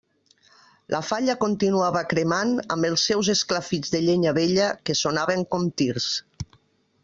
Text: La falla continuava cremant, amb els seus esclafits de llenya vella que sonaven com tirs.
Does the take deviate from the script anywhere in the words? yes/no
no